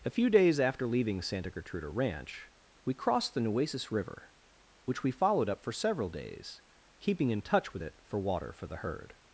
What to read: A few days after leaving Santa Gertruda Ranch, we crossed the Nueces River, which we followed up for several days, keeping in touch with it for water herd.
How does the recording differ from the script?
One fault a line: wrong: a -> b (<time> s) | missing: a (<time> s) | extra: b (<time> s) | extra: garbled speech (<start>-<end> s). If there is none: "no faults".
extra: for the (8.5 s)